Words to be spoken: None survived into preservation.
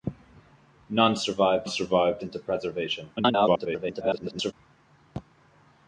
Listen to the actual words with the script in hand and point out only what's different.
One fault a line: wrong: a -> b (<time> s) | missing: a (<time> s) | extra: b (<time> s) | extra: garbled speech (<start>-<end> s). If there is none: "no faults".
extra: survived (1.7 s)
extra: garbled speech (3.2-4.5 s)